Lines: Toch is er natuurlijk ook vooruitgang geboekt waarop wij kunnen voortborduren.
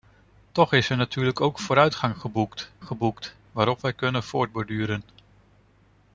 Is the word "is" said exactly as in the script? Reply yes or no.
yes